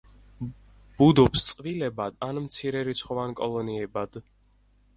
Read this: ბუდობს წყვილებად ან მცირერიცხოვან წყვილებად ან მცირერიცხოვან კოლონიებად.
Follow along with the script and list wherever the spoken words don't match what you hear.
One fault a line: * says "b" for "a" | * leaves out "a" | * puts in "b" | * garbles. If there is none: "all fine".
* leaves out "წყვილებად ან მცირერიცხოვან"